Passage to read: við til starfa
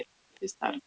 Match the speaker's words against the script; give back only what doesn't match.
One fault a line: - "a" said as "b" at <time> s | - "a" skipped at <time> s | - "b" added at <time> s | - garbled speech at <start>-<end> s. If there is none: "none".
none